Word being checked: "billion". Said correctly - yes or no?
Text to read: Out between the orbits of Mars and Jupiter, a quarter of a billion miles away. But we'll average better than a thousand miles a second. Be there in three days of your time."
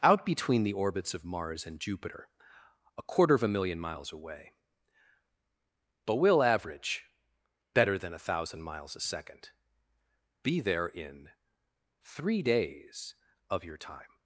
no